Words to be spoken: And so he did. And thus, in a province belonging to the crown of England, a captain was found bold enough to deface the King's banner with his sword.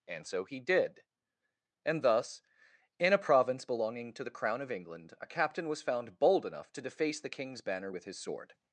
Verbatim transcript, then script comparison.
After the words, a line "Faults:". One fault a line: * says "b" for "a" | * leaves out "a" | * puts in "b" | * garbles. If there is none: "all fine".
And so he did. And thus, in a province belonging to the crown of England, a captain was found bold enough to deface the King's banner with his sword.
Faults:
all fine